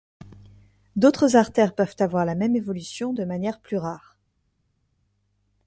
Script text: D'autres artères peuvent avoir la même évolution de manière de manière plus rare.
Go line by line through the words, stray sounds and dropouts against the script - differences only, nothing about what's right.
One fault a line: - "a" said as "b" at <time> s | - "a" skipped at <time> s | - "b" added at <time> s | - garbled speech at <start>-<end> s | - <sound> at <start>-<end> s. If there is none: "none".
- "de manière" skipped at 3.6 s